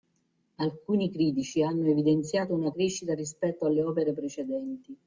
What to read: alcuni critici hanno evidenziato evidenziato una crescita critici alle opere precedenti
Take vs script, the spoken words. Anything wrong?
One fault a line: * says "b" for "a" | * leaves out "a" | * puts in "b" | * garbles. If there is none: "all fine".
* leaves out "evidenziato"
* says "rispetto" for "critici"